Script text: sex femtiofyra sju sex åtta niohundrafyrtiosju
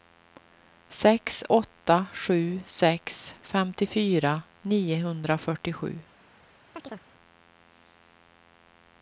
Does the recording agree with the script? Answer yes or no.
no